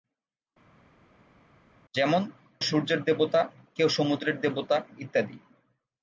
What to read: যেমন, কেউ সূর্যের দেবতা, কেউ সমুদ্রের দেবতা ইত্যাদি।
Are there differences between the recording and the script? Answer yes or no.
yes